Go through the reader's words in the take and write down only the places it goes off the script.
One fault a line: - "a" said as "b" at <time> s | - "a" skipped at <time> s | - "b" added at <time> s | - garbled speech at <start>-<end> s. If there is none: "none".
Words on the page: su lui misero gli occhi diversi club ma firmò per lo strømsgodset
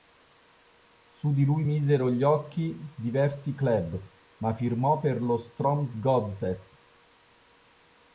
- "di" added at 1.3 s